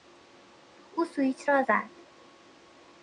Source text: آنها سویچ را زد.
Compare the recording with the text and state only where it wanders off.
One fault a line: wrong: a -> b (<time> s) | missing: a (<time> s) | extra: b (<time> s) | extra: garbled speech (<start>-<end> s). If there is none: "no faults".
wrong: آنها -> او (0.9 s)